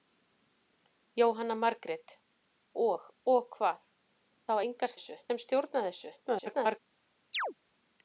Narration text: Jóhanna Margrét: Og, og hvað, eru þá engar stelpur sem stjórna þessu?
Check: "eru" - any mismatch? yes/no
yes